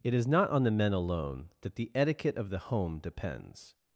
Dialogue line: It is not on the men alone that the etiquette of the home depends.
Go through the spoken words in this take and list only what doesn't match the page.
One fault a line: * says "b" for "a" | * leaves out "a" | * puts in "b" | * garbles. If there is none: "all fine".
all fine